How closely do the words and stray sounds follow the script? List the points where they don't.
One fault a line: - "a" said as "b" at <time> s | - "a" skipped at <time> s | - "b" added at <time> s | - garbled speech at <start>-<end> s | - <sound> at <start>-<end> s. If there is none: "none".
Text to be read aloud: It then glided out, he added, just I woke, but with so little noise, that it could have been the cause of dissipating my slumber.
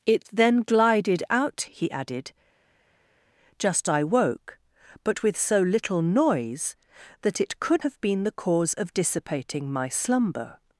none